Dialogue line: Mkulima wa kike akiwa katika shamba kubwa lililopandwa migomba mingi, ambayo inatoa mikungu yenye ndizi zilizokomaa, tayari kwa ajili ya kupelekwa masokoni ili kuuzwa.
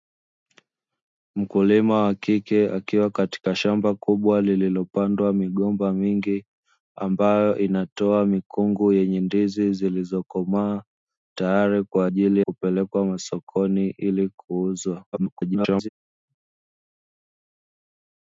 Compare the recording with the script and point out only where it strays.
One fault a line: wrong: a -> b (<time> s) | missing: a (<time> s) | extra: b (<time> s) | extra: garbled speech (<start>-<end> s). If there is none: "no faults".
missing: ya (12.4 s)
extra: garbled speech (15.1-15.9 s)